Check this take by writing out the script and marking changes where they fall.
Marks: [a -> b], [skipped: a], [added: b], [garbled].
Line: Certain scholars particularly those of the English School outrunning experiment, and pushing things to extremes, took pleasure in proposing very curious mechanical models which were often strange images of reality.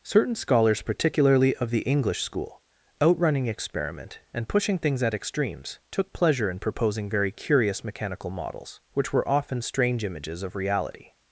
Certain scholars particularly [skipped: those] of the English School outrunning experiment, and pushing things [to -> at] extremes, took pleasure in proposing very curious mechanical models which were often strange images of reality.